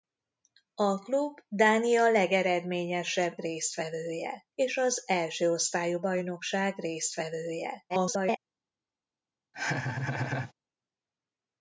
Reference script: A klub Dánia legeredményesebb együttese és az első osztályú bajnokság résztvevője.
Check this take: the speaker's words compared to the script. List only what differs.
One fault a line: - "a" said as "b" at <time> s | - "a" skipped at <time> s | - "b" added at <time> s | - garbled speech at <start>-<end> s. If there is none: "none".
- "együttese" said as "résztvevője" at 3.4 s
- garbled speech at 7.9-8.4 s